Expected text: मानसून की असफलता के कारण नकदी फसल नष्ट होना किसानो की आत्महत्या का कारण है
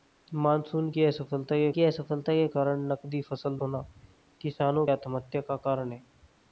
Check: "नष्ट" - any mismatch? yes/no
yes